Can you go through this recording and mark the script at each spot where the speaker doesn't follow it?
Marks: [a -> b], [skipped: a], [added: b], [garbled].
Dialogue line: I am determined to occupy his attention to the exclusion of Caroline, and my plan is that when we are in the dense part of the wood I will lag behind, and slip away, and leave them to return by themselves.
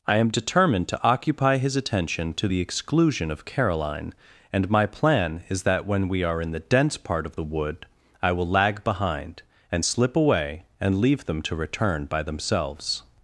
I am determined to occupy his attention to the exclusion of Caroline, and my plan is that when we are in the dense part of the wood I will lag behind, and slip away, and leave them to return by themselves.